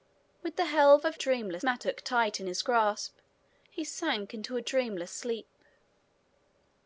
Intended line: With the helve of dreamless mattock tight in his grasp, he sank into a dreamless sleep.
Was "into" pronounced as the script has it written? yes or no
yes